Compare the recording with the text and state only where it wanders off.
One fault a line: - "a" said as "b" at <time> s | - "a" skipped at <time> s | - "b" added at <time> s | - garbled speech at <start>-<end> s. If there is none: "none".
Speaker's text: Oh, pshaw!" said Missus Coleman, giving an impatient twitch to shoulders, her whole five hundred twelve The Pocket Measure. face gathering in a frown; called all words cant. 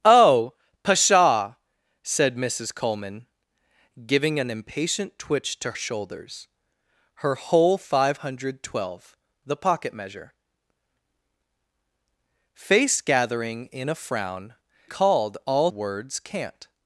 none